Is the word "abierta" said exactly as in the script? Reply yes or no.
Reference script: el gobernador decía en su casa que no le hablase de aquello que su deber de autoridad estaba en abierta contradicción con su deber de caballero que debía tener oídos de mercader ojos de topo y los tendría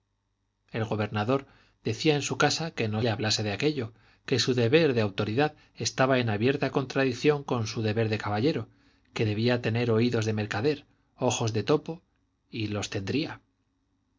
yes